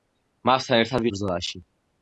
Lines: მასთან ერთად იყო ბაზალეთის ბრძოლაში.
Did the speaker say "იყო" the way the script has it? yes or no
no